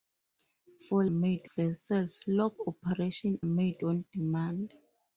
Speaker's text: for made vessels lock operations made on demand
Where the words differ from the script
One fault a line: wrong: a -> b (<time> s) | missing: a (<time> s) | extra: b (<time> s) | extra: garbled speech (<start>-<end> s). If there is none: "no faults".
no faults